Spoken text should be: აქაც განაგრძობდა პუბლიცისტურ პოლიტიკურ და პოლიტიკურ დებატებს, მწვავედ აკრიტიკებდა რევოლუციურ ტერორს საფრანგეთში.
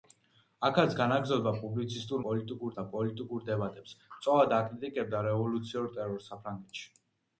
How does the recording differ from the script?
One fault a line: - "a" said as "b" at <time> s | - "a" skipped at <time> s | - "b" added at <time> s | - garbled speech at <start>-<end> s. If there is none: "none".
none